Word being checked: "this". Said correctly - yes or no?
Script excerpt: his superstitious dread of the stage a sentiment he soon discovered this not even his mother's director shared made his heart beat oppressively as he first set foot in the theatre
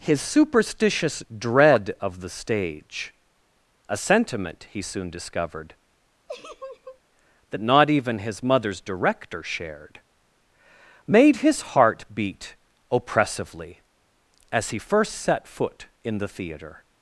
no